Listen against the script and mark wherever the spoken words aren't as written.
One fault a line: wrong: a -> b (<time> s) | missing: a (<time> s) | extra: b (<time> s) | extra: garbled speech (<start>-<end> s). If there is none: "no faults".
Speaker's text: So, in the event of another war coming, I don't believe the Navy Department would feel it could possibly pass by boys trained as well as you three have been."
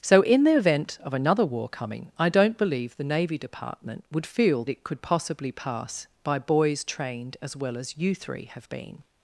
no faults